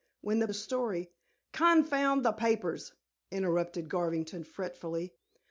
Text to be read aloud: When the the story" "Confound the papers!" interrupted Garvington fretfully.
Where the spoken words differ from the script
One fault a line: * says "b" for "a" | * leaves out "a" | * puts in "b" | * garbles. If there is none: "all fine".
all fine